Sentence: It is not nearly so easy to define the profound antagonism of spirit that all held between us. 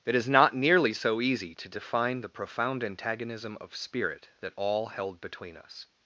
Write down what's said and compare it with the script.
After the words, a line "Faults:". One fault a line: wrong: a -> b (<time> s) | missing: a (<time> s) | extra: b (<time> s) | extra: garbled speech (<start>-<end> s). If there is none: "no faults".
It is not nearly so easy to define the profound antagonism of spirit that all held between us.
Faults:
no faults